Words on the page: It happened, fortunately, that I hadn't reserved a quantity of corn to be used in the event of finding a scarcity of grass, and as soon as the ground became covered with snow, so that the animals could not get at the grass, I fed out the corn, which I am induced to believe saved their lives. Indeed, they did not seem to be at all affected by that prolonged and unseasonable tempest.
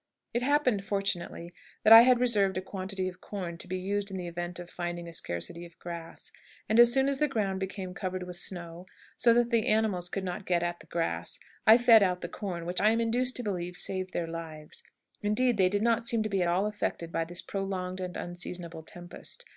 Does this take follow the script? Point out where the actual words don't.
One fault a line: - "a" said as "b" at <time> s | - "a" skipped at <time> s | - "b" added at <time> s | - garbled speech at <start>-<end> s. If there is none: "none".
- "hadn't" said as "had" at 2.0 s
- "that" said as "this" at 17.2 s